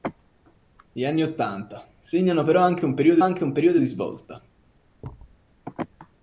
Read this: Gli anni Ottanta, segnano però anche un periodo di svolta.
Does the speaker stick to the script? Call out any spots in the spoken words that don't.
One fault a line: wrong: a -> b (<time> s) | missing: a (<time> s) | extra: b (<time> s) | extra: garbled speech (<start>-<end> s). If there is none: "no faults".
extra: anche un periodo (3.2 s)